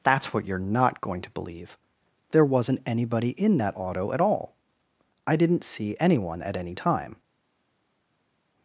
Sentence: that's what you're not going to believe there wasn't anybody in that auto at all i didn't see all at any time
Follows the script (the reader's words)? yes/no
no